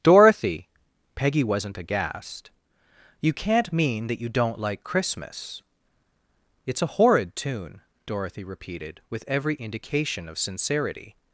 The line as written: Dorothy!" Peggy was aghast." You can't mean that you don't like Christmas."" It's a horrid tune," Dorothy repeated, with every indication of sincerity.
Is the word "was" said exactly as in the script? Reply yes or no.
no